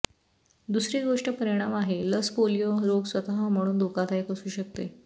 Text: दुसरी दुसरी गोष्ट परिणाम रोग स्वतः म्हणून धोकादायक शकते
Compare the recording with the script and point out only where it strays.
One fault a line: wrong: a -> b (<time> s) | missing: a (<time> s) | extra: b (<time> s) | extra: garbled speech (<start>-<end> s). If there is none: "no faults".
missing: दुसरी (1.0 s)
extra: आहे लस पोलिओ (1.8 s)
extra: असू (4.3 s)